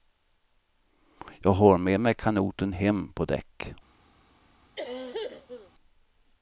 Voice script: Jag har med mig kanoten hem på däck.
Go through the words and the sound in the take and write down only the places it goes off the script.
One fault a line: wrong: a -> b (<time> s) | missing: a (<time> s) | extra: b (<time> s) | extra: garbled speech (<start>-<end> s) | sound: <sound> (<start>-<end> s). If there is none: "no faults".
sound: cough (4.8-5.7 s)